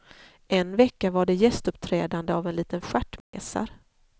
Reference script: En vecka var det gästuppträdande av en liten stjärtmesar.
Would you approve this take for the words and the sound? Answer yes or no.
no